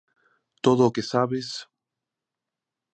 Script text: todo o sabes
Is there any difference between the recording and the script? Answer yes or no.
yes